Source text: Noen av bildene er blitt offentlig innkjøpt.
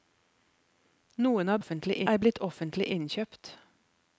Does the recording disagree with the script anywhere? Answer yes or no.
yes